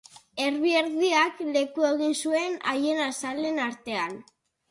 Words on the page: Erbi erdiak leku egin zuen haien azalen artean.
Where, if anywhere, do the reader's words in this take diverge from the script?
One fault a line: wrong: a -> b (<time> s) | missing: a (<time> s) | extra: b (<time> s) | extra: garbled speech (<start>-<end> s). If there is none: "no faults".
no faults